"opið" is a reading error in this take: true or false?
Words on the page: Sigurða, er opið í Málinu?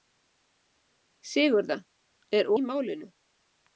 true